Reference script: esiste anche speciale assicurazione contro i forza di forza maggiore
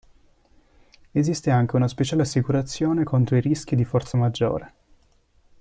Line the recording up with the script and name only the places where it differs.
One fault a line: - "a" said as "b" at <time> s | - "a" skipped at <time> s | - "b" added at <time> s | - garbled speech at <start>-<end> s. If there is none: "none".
- "una" added at 1.8 s
- "forza" said as "rischi" at 3.4 s